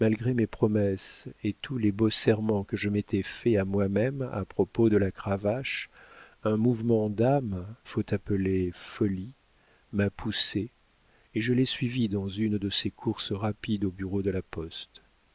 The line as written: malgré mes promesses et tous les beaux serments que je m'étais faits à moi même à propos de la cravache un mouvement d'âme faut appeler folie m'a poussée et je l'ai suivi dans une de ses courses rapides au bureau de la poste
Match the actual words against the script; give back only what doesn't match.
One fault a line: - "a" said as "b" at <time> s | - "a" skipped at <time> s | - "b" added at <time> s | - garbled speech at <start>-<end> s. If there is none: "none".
none